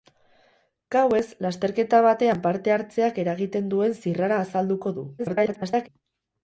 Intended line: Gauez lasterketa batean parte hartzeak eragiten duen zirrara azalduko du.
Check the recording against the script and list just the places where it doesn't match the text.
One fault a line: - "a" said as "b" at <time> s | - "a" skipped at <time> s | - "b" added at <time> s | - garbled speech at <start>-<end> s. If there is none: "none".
- garbled speech at 5.2-5.9 s